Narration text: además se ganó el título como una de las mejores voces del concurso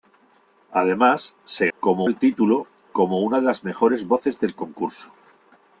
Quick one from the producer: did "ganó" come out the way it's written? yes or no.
no